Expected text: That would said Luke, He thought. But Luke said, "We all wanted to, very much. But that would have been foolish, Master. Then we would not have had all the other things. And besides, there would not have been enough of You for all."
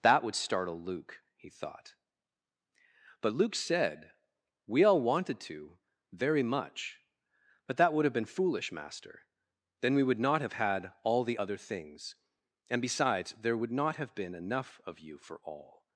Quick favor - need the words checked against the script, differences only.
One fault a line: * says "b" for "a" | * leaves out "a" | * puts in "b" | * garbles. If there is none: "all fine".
* says "startle" for "said"